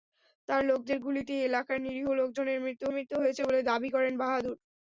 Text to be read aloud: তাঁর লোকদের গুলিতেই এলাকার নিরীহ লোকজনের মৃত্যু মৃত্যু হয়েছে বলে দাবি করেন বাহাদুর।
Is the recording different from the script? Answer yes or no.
no